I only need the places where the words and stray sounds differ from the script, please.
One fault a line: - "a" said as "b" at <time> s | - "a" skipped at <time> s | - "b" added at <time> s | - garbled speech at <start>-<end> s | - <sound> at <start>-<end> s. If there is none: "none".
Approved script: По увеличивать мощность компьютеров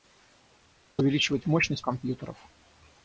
none